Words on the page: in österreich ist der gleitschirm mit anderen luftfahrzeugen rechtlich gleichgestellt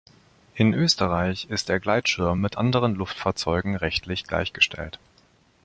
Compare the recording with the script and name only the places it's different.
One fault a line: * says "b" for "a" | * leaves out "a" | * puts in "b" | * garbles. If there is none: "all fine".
all fine